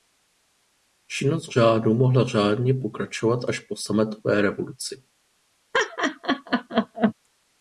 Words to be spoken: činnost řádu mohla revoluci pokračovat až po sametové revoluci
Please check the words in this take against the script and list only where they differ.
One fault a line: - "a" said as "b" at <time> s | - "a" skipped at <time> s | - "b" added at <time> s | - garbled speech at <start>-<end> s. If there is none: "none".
- "revoluci" said as "řádně" at 2.3 s